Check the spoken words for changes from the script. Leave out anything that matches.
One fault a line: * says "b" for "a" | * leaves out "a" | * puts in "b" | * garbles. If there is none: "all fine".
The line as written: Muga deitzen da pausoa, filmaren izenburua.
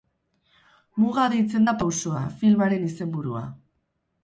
all fine